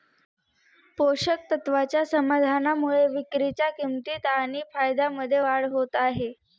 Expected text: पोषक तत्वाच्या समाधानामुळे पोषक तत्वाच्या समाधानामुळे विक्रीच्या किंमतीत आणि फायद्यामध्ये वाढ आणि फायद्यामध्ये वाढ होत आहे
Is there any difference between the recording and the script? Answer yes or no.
yes